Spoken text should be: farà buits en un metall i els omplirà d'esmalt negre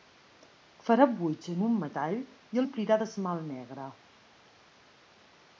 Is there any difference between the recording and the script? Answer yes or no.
yes